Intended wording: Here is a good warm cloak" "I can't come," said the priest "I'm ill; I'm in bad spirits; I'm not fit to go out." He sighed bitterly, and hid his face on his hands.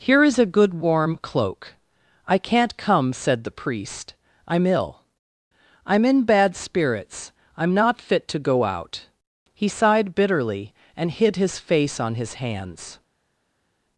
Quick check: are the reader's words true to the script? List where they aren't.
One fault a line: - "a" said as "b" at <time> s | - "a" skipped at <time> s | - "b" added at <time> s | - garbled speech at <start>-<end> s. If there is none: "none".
none